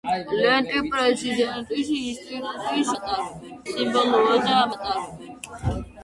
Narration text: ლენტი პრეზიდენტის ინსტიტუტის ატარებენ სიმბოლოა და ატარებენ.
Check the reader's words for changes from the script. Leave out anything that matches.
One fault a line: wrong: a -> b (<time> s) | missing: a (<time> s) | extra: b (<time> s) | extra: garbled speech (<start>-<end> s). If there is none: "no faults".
no faults